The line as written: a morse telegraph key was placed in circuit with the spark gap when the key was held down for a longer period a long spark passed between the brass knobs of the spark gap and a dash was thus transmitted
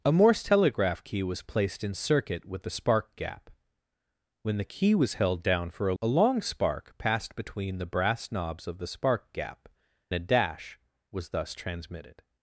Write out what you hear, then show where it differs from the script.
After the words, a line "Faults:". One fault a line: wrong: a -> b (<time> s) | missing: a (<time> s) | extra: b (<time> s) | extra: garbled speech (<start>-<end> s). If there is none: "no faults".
a morse telegraph key was placed in circuit with the spark gap when the key was held down for a a long spark passed between the brass knobs of the spark gap a dash was thus transmitted
Faults:
missing: longer period (5.9 s)
missing: and (9.7 s)